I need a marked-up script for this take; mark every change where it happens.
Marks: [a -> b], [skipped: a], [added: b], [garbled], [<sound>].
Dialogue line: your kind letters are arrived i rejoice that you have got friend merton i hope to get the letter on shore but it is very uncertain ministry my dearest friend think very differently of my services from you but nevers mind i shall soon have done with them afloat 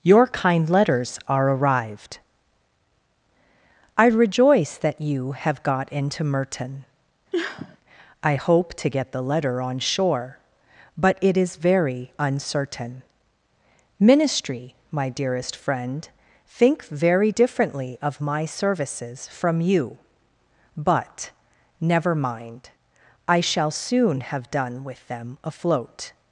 your kind letters are arrived i rejoice that you have got [friend -> into] merton [sniff] i hope to get the letter on shore but it is very uncertain ministry my dearest friend think very differently of my services from you but [nevers -> never] mind i shall soon have done with them afloat